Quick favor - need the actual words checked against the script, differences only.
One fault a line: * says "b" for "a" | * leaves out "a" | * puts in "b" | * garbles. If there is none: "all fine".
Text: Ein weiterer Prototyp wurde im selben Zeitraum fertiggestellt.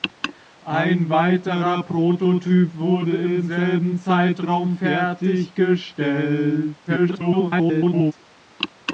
* garbles